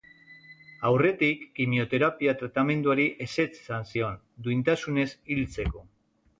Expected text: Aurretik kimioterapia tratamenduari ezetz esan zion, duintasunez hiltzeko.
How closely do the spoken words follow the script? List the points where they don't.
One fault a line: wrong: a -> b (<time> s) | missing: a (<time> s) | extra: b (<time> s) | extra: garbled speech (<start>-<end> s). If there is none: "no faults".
no faults